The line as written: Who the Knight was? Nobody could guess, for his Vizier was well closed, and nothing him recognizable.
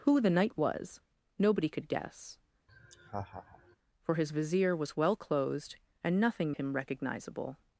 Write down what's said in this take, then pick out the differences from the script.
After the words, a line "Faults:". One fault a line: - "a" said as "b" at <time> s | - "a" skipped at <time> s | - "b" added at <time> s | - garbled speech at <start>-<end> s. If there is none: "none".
Who the Knight was? Nobody could guess, for his Vizier was well closed, and nothing him recognizable.
Faults:
none